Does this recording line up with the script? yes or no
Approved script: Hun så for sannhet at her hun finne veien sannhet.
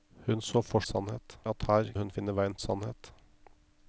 yes